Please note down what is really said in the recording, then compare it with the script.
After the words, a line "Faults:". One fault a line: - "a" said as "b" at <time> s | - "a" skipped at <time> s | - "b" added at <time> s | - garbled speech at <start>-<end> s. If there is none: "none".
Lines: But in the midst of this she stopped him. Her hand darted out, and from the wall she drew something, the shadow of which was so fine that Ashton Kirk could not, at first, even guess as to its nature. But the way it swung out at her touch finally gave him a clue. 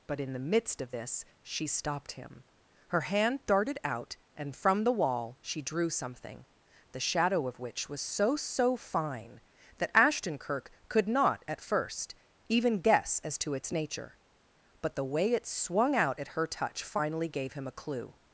But in the midst of this she stopped him. Her hand darted out, and from the wall she drew something, the shadow of which was so so fine that Ashton Kirk could not, at first, even guess as to its nature. But the way it swung out at her touch finally gave him a clue.
Faults:
- "so" added at 8.4 s